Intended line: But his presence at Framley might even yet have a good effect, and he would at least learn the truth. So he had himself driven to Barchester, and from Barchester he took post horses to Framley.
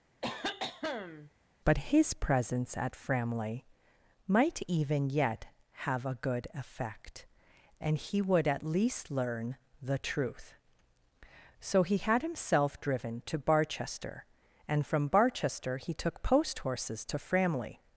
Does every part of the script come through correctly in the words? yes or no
yes